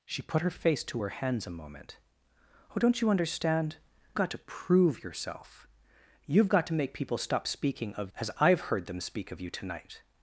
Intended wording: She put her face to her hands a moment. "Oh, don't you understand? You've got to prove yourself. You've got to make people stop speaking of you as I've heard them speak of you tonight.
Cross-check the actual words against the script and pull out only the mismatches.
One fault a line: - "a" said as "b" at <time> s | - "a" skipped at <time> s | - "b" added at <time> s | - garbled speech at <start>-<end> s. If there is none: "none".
- "You've" skipped at 3.8 s
- "you" skipped at 8.1 s